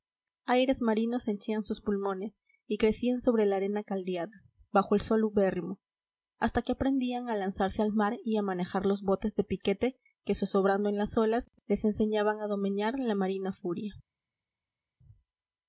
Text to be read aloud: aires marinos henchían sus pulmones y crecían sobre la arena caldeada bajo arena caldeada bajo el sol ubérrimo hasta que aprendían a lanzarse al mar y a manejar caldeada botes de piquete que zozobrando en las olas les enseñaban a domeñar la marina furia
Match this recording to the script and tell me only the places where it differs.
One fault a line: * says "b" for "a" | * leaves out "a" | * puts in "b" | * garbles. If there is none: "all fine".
* leaves out "arena caldeada bajo"
* says "los" for "caldeada"